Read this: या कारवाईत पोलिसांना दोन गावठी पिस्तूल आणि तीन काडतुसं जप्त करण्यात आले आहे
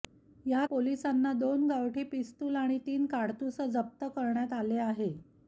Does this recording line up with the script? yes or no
no